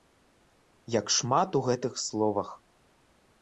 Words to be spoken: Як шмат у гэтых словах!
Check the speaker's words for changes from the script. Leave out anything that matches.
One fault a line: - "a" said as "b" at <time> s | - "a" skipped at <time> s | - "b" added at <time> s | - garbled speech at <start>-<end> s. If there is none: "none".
none